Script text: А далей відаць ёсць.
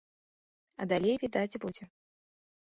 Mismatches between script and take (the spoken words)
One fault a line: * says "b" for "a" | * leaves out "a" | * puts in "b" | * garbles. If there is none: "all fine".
* says "будзе" for "ёсць"